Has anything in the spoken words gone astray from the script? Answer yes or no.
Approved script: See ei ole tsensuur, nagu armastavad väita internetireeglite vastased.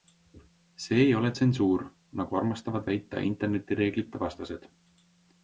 no